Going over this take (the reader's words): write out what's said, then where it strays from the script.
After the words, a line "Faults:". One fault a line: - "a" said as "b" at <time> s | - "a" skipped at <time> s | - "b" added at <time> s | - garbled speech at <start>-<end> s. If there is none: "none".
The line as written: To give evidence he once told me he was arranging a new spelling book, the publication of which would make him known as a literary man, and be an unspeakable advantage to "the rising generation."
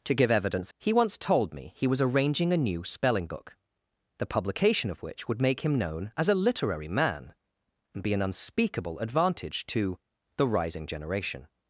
To give evidence he once told me he was arranging a new spelling book, the publication of which would make him known as a literary man, and be an unspeakable advantage to "the rising generation."
Faults:
none